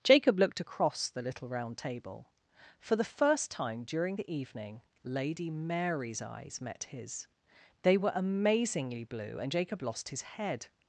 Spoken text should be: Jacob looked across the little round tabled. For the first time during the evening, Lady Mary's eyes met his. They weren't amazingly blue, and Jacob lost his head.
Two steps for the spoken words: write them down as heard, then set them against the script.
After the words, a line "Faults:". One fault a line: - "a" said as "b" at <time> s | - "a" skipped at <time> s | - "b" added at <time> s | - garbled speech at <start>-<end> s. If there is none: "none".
Jacob looked across the little round table. For the first time during the evening, Lady Mary's eyes met his. They were amazingly blue, and Jacob lost his head.
Faults:
- "tabled" said as "table" at 1.8 s
- "weren't" said as "were" at 8.0 s